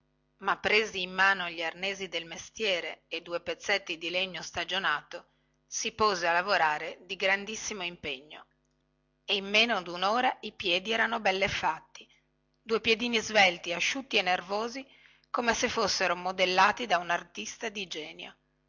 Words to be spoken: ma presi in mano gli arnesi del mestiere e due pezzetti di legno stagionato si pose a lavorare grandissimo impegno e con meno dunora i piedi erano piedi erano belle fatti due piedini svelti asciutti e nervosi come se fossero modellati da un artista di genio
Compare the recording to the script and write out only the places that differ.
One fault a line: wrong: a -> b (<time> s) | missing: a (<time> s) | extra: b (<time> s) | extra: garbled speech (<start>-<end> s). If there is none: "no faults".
extra: di (7.0 s)
wrong: con -> in (9.3 s)
missing: piedi erano (11.2 s)